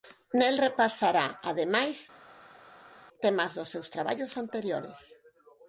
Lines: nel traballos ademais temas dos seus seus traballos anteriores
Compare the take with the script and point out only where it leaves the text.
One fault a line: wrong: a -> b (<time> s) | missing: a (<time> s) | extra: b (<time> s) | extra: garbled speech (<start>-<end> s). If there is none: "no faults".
wrong: traballos -> repasará (0.7 s)
missing: seus (3.9 s)